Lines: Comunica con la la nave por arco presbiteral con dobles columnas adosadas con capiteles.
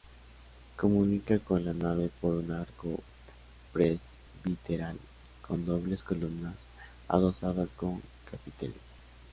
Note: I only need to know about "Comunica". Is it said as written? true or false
true